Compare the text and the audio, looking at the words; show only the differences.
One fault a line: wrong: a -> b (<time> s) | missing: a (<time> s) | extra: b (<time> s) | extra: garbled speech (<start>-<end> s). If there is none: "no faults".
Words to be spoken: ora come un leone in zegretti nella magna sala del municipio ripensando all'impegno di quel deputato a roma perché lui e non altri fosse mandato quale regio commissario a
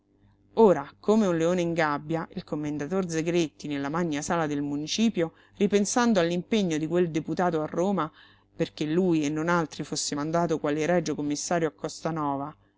extra: gabbia il commendator (1.8 s)